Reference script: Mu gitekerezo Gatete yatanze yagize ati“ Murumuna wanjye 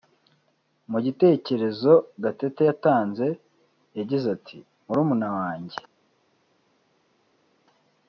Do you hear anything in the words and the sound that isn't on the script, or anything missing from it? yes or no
no